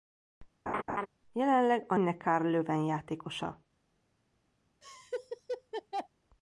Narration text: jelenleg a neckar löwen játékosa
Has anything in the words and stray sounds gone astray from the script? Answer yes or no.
yes